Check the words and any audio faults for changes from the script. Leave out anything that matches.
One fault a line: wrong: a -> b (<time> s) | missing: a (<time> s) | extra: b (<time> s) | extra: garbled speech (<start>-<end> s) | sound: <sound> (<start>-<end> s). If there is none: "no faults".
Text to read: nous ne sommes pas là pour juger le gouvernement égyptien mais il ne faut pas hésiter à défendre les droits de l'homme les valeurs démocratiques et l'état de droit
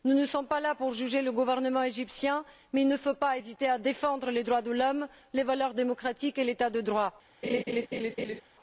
sound: laugh (7.4-8.4 s)